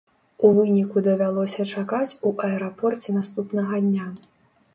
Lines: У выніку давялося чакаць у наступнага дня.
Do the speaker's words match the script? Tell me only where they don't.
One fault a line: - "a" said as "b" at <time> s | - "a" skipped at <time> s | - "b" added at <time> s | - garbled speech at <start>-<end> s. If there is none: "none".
- "аэрапорце" added at 2.5 s